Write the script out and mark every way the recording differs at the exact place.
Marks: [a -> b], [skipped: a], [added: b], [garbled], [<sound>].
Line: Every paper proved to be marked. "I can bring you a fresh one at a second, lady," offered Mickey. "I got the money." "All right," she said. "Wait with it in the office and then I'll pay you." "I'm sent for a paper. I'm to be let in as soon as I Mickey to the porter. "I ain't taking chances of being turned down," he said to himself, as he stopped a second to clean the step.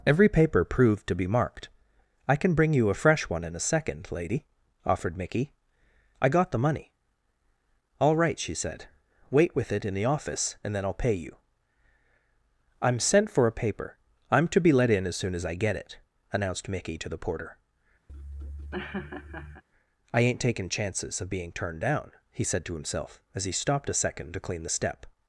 Every paper proved to be marked. "I can bring you a fresh one [at -> in] a second, lady," offered Mickey. "I got the money." "All right," she said. "Wait with it in the office and then I'll pay you." "I'm sent for a paper. I'm to be let in as soon as I [added: get it announced] Mickey to the porter. [laugh] "I ain't taking chances of being turned down," he said to himself, as he stopped a second to clean the step.